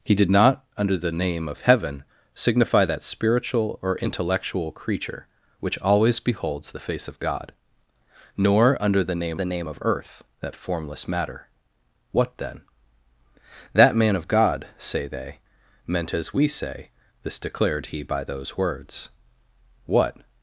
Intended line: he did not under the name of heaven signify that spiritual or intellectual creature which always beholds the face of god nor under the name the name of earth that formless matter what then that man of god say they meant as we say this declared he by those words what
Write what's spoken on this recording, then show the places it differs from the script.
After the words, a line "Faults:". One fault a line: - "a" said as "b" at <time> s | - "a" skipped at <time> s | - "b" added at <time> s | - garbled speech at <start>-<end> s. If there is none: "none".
he did not under the name of heaven signify that spiritual or intellectual creature which always beholds the face of god nor under the name the name of earth that formless matter what then that man of god say they meant as we say this declared he by those words what
Faults:
none